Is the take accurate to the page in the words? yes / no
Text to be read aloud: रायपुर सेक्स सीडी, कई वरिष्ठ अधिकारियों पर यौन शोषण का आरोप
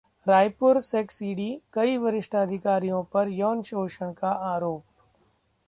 yes